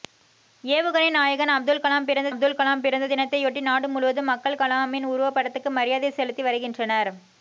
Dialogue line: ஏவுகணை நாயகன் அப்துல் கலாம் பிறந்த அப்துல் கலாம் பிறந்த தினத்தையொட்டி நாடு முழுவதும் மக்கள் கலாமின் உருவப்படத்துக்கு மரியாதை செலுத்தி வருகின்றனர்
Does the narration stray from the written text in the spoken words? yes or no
no